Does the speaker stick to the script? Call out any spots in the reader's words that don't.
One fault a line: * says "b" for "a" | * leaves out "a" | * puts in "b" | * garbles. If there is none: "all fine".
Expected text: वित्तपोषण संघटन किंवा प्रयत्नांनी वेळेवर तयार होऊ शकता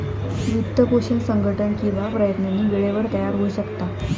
all fine